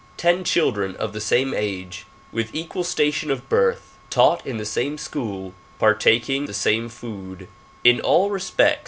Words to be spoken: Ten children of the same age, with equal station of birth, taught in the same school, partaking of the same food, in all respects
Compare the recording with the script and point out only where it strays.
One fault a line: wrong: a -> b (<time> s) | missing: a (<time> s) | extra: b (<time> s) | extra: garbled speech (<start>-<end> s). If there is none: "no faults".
missing: of (6.5 s)